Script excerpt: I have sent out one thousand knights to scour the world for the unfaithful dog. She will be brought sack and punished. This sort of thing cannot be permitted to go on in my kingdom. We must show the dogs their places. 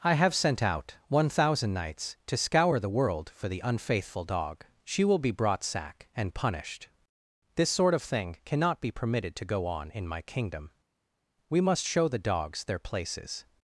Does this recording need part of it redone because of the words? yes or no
no